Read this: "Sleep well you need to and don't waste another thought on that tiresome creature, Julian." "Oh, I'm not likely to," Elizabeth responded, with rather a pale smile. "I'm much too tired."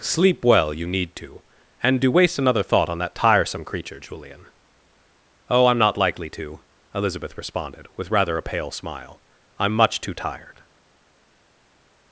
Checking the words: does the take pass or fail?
fail